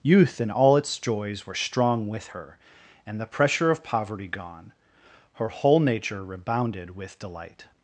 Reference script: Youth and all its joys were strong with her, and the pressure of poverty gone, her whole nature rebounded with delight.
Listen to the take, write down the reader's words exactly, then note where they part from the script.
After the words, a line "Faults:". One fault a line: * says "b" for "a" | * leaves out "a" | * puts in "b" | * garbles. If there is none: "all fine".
Youth and all its joys were strong with her, and the pressure of poverty gone, her whole nature rebounded with delight.
Faults:
all fine